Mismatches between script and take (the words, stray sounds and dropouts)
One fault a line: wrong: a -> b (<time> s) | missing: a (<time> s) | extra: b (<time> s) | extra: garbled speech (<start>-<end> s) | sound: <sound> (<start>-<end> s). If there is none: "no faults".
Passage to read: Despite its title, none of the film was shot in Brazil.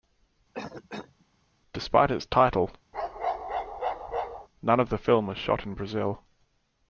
sound: cough (0.5-1.3 s)
sound: bark (2.9-4.5 s)